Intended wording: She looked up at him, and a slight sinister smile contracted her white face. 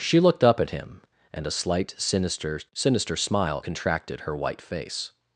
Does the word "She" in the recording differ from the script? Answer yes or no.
no